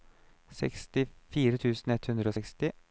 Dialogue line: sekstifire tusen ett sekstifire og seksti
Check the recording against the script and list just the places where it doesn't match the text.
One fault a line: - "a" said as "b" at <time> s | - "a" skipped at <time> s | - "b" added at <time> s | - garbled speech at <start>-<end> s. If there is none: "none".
- "sekstifire" said as "hundre" at 2.1 s